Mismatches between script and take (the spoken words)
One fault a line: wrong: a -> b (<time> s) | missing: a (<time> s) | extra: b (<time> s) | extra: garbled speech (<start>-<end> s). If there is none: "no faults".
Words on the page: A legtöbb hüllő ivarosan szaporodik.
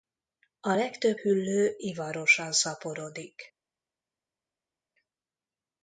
no faults